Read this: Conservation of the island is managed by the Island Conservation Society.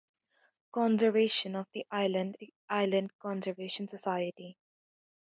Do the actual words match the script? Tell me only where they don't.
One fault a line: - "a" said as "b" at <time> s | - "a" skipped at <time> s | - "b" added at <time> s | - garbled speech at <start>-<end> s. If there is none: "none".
- "is managed by" skipped at 2.4 s